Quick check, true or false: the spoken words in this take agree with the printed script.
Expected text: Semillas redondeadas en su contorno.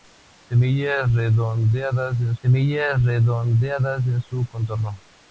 false